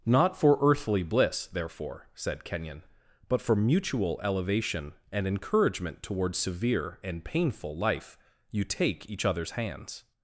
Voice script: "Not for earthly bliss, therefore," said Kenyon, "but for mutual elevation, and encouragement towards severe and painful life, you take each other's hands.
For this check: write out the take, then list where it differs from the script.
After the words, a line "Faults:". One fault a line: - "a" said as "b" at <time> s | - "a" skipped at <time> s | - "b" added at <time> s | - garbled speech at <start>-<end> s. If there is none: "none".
"Not for earthly bliss, therefore," said Kenyon, "but for mutual elevation, and encouragement towards severe and painful life, you take each other's hands.
Faults:
none